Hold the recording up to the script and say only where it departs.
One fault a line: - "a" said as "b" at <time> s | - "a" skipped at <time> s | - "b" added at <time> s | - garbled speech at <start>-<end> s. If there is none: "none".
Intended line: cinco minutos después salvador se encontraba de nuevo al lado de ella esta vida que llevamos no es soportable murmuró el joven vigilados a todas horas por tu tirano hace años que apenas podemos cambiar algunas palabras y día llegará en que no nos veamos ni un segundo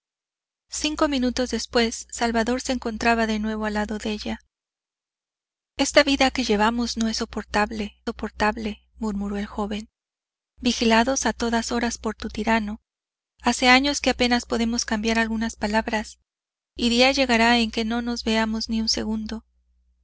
- "soportable" added at 8.0 s